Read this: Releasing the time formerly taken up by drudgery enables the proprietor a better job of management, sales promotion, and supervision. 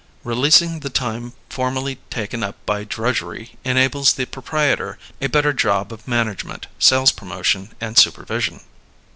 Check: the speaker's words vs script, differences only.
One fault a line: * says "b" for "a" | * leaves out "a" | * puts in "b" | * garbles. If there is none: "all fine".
all fine